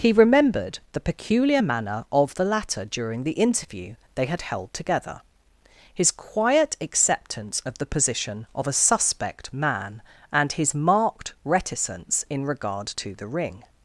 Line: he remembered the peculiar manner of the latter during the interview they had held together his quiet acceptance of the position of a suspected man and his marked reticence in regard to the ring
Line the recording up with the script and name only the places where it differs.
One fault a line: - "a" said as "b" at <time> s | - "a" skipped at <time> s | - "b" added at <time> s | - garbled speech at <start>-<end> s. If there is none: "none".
- "suspected" said as "suspect" at 8.7 s